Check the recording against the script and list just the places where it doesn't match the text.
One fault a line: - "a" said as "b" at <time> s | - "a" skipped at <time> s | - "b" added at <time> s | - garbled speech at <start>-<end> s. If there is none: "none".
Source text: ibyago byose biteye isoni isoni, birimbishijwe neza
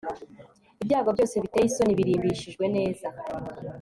- "isoni" skipped at 2.0 s